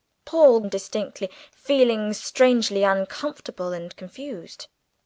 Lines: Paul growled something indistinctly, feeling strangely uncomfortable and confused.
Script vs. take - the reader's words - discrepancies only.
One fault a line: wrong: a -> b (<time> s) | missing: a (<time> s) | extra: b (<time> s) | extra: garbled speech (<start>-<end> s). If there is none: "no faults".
missing: growled something (0.6 s)